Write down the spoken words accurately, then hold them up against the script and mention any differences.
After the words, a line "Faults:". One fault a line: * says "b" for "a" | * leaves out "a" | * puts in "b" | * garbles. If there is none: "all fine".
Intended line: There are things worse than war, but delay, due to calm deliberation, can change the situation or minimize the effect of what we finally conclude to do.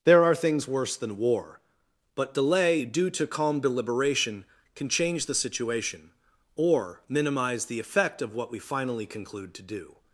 There are things worse than war, but delay, due to calm deliberation, can change the situation or minimize the effect of what we finally conclude to do.
Faults:
all fine